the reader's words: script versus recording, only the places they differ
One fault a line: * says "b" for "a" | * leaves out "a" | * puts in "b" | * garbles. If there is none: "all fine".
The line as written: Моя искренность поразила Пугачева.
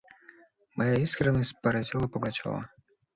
all fine